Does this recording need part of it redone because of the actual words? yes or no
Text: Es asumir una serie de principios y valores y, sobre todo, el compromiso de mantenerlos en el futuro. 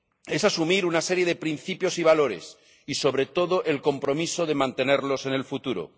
no